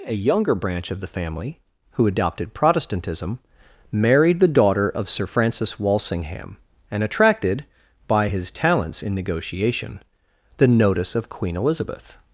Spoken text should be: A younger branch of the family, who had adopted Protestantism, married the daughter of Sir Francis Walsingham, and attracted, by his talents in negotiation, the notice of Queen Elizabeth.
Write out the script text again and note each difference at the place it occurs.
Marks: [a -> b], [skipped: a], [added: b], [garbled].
A younger branch of the family, who [skipped: had] adopted Protestantism, married the daughter of Sir Francis Walsingham, and attracted, by his talents in negotiation, the notice of Queen Elizabeth.